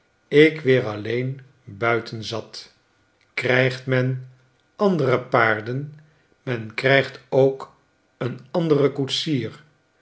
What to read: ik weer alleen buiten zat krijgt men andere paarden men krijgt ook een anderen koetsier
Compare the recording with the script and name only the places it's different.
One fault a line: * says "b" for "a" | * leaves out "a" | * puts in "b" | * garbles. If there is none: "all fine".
all fine